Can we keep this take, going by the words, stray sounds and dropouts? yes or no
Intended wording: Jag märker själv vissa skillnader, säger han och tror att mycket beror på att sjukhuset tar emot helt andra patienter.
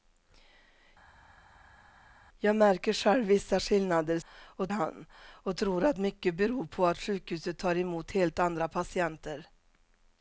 no